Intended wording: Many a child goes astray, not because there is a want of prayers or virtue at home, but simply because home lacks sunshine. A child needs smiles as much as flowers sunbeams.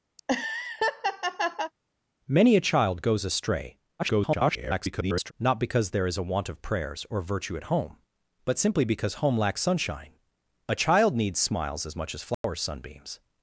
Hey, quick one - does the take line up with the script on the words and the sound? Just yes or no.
no